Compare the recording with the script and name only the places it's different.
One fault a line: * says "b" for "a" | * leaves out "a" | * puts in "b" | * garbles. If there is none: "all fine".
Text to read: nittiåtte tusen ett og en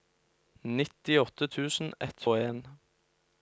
all fine